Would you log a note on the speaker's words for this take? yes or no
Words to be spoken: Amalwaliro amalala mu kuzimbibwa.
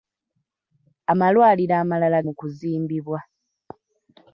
no